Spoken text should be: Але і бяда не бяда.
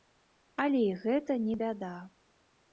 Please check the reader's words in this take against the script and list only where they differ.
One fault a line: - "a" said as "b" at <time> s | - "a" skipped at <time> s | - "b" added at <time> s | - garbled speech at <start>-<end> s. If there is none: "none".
- "бяда" said as "гэта" at 1.1 s